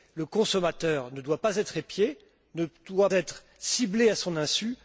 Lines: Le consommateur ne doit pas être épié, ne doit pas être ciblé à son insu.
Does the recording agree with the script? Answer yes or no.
no